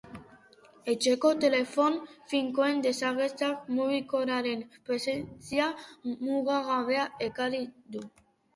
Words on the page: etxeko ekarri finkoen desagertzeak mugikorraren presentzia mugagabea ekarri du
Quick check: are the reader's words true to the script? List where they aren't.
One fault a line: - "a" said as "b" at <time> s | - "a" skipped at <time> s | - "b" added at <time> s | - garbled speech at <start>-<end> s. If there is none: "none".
- "ekarri" said as "telefono" at 1.4 s